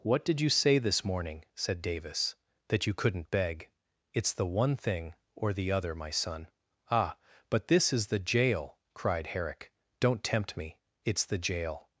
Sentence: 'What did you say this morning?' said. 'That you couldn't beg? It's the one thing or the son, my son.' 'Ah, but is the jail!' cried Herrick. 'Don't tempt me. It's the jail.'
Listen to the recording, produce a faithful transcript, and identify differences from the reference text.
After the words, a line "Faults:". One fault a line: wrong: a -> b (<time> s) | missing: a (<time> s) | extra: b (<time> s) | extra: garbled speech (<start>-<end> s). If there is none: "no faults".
'What did you say this morning?' said Davis. 'That you couldn't beg? It's the one thing or the other, my son.' 'Ah, but this is the jail!' cried Herrick. 'Don't tempt me. It's the jail.'
Faults:
extra: Davis (1.8 s)
wrong: son -> other (5.7 s)
extra: this (7.7 s)